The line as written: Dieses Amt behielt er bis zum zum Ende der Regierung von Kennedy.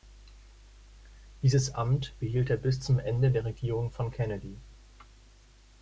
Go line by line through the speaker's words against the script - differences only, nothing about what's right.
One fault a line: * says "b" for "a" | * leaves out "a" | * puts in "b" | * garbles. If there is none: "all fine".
* leaves out "zum"